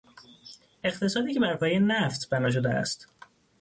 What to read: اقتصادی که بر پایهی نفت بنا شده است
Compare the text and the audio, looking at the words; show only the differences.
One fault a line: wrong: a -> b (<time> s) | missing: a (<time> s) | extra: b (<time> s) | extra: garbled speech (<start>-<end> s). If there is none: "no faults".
no faults